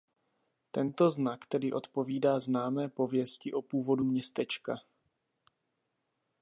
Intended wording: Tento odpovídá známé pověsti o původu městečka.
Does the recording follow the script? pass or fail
fail